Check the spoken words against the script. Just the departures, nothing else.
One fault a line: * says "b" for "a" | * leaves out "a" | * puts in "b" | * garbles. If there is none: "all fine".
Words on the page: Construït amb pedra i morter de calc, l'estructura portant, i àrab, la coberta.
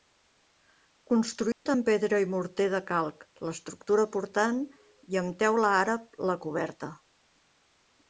* puts in "amb teula"